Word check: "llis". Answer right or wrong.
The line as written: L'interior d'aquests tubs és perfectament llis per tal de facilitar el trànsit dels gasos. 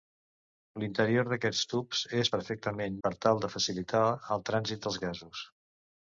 wrong